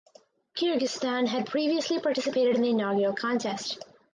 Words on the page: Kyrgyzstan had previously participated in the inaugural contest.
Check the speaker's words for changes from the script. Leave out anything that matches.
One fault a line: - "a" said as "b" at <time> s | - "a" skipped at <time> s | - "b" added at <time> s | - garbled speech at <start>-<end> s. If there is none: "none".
none